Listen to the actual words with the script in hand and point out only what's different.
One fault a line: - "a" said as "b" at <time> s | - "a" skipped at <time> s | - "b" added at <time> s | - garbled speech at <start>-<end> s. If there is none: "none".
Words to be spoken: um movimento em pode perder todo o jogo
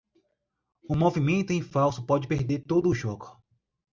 - "falso" added at 1.6 s